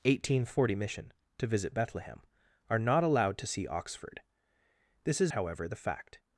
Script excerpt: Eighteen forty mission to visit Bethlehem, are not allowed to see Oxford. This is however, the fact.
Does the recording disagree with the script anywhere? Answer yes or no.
no